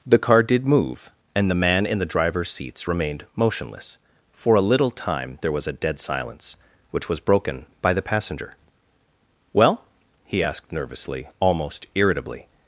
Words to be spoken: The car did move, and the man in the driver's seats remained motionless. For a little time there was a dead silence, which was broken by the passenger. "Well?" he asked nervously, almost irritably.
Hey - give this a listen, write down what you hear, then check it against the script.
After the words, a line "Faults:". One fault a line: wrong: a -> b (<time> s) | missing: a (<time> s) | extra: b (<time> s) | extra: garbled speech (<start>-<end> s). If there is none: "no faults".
The car did move, and the man in the driver's seats remained motionless. For a little time there was a dead silence, which was broken by the passenger. "Well?" he asked nervously, almost irritably.
Faults:
no faults